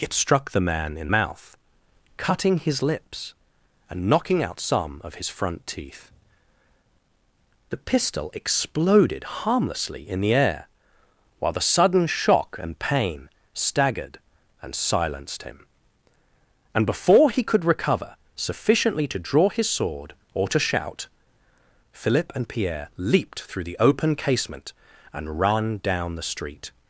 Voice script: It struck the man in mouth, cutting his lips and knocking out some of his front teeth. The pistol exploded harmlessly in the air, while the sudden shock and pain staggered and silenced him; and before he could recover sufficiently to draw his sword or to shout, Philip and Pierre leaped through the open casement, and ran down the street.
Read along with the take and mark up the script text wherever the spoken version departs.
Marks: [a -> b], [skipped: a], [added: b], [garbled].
It struck the man in mouth, cutting his lips and knocking out some of his front teeth. The pistol exploded harmlessly in the air, while the sudden shock and pain staggered and silenced him; and before he could recover sufficiently to draw his sword or to shout, Philip and Pierre leaped through the open casement, and ran down the street.